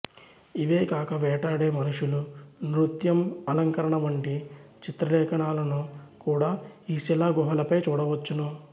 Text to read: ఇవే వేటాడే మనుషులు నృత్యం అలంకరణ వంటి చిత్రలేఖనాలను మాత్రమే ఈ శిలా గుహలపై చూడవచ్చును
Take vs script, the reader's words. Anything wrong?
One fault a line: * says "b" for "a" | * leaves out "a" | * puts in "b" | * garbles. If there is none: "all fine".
* puts in "కాక"
* says "కూడా" for "మాత్రమే"